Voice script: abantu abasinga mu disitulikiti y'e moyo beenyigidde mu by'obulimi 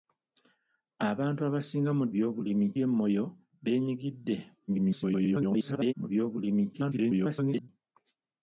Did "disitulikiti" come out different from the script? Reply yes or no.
yes